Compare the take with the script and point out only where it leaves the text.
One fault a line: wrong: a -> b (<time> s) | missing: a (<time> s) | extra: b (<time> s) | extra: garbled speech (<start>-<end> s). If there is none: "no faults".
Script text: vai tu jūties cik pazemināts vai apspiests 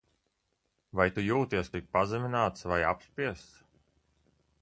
no faults